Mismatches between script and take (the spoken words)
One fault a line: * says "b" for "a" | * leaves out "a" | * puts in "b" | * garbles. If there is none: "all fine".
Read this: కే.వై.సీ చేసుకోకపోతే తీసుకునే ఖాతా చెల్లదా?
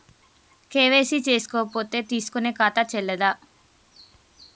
all fine